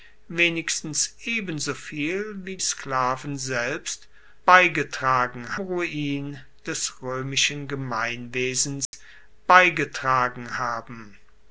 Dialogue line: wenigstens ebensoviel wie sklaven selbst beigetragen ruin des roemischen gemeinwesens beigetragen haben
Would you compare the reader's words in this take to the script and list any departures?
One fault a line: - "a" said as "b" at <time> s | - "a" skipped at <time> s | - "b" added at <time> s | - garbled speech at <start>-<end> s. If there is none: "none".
none